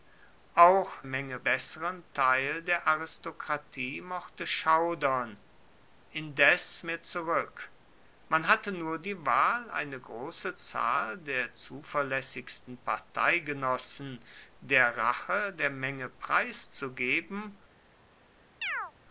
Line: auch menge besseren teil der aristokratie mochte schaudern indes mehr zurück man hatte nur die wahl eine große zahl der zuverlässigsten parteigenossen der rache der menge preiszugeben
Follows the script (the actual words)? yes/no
yes